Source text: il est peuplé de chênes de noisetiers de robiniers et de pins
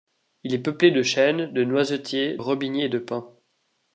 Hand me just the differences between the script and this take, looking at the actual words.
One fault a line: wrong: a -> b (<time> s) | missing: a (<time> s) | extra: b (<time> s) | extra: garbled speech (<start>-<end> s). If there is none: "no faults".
missing: de (2.4 s)